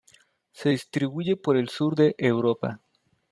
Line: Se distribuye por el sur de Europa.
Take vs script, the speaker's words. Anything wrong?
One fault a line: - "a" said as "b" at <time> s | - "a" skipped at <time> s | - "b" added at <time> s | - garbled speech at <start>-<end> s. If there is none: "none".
none